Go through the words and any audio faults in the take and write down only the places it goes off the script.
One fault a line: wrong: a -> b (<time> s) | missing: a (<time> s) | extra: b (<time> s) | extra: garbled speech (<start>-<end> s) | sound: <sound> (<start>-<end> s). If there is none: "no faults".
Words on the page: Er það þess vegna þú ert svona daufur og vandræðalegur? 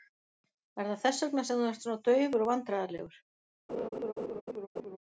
extra: sem (1.5 s)
sound: laugh (3.7-5.0 s)